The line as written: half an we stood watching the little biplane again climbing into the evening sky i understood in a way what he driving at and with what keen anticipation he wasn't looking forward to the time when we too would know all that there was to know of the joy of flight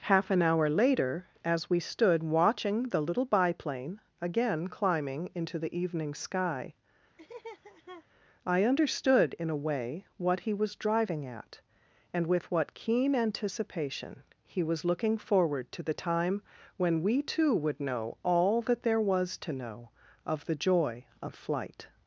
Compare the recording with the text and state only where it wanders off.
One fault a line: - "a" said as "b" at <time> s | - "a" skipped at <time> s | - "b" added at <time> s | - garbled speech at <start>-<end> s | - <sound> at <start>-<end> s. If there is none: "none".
- "hour later as" added at 0.4 s
- laugh at 7.2-8.1 s
- "was" added at 10.5 s
- "wasn't" said as "was" at 14.6 s